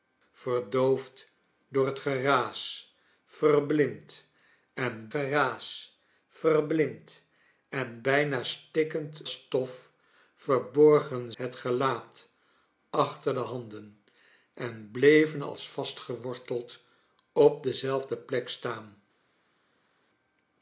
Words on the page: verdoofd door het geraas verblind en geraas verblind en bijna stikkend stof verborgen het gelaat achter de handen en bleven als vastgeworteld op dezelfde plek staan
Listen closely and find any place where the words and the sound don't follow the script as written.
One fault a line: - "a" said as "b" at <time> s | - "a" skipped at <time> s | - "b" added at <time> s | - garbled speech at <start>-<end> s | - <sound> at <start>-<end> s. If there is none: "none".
none